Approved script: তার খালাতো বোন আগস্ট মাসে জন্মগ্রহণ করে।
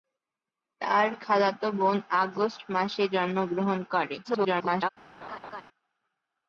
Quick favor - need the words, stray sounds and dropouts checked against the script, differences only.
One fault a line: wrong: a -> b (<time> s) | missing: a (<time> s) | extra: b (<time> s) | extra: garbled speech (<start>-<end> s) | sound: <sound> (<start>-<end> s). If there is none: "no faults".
extra: garbled speech (4.2-4.9 s)
sound: laugh (5.2-5.6 s)